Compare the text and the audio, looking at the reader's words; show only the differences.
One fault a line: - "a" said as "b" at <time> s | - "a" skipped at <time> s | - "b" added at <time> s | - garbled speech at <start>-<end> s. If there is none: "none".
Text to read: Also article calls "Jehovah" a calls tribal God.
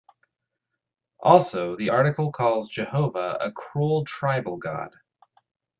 - "the" added at 1.7 s
- "calls" said as "cruel" at 3.5 s